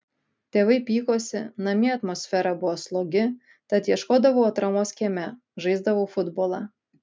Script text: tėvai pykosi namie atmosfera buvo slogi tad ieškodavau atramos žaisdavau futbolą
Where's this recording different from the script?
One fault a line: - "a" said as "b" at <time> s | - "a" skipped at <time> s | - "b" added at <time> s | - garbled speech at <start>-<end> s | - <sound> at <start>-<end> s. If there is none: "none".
- "kieme" added at 5.0 s